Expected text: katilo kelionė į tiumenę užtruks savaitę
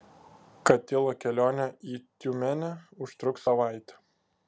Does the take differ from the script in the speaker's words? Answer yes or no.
no